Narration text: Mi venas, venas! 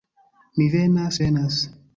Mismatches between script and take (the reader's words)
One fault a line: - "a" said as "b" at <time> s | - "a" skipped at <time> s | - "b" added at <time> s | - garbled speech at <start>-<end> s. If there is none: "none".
none